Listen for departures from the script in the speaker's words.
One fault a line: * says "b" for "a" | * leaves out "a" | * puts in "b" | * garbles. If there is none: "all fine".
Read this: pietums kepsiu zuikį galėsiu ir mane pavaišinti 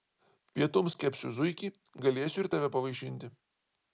* says "tave" for "mane"